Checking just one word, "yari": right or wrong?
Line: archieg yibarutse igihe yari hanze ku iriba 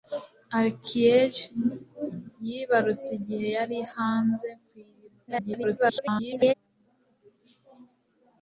right